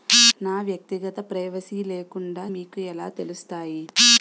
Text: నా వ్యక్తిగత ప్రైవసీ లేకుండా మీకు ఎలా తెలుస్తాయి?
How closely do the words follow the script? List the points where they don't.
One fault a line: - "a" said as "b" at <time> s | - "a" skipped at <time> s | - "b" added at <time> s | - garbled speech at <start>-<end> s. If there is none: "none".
none